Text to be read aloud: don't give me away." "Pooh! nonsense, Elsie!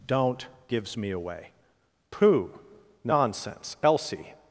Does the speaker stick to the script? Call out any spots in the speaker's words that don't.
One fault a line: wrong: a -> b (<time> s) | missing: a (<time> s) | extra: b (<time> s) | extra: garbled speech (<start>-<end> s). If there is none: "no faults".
wrong: give -> gives (0.7 s)